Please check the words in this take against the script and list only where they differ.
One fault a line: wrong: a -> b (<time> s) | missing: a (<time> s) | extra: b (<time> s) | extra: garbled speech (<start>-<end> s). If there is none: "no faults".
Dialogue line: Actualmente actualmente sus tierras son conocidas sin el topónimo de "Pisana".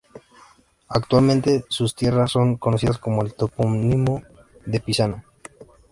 missing: actualmente (1.6 s)
wrong: sin -> con (3.0 s)